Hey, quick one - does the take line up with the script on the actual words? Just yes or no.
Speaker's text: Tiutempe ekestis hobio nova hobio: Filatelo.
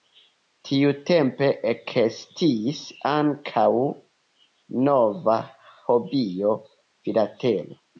no